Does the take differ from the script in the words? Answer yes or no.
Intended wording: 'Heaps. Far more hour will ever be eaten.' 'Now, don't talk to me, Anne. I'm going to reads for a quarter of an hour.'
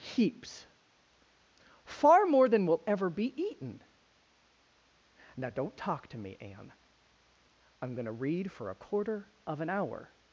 yes